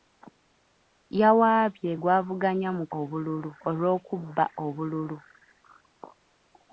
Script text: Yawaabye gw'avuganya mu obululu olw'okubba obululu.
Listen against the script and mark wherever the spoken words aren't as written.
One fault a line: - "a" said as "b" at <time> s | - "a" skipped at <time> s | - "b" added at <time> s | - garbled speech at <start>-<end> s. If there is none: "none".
none